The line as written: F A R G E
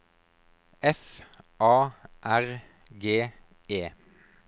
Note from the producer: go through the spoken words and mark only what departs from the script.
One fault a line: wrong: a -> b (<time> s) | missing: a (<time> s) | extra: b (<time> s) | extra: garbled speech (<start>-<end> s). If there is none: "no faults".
no faults